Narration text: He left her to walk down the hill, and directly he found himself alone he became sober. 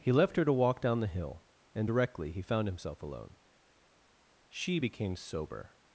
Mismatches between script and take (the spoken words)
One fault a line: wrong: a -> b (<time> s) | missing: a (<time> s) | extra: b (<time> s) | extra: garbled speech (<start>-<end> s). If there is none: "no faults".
wrong: he -> she (4.5 s)